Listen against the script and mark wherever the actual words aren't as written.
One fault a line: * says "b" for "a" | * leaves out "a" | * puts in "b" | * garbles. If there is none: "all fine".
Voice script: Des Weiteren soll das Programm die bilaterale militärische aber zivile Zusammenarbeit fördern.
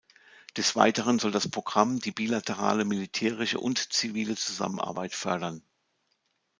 * says "und" for "aber"